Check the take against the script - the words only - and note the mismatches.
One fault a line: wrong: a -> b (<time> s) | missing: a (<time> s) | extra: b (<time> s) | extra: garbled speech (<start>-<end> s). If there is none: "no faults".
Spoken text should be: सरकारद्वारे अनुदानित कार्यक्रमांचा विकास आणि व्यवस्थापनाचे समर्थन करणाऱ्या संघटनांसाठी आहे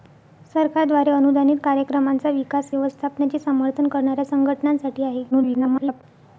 missing: आणि (2.7 s)
extra: garbled speech (5.3-6.0 s)